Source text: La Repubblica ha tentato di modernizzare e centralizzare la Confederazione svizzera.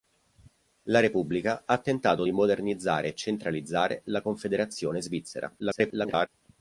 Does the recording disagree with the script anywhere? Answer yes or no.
yes